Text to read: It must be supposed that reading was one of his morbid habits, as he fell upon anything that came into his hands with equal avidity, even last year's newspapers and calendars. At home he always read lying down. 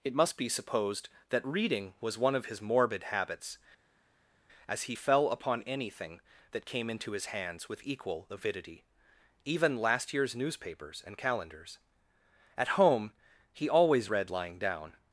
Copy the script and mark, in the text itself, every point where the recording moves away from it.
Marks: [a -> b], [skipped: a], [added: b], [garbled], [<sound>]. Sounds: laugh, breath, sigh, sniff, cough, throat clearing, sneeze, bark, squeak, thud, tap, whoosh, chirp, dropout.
It must be supposed that reading was one of his morbid habits, as he fell upon anything that came into his hands with equal avidity, even last year's newspapers and calendars. At home he always read lying down.